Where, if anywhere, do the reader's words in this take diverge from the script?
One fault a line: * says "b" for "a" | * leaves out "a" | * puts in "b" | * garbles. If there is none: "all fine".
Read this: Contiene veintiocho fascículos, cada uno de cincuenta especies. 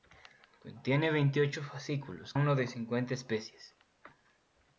* leaves out "cada"